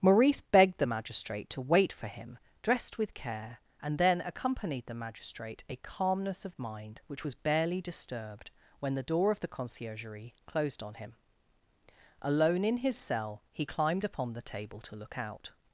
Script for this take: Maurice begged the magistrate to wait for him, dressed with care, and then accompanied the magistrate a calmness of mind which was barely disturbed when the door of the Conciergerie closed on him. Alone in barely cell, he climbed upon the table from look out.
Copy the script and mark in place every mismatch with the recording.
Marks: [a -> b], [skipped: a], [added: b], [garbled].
Maurice begged the magistrate to wait for him, dressed with care, and then accompanied the magistrate a calmness of mind which was barely disturbed when the door of the Conciergerie closed on him. Alone in [barely -> his] cell, he climbed upon the table [from -> to] look out.